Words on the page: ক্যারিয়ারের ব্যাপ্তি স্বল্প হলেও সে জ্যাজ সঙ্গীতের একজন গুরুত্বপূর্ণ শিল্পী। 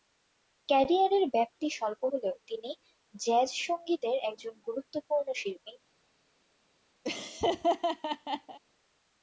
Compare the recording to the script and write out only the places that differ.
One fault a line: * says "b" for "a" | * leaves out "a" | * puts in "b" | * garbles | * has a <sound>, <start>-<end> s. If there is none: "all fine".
* says "তিনি" for "সে"
* has a laugh, 7.0-8.6 s